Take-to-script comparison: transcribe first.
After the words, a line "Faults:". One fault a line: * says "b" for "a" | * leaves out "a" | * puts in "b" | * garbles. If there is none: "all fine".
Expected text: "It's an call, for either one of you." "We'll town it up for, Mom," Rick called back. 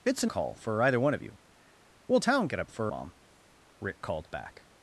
"It's an call, for either one of you." "We'll town it up for, Mom," Rick called back.
Faults:
all fine